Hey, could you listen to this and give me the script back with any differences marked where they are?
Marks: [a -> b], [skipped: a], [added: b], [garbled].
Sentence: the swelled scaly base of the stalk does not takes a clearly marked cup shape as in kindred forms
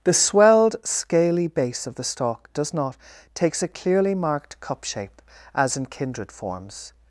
the swelled scaly base of the stalk does not takes a clearly marked cup shape as in kindred forms